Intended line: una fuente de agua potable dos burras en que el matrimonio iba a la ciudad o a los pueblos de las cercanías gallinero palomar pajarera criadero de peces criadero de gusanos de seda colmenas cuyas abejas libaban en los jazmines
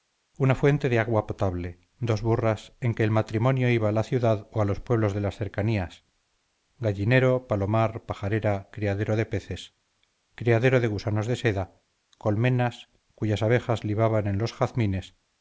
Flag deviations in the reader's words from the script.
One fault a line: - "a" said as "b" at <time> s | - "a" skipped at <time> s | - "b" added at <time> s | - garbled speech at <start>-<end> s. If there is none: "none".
none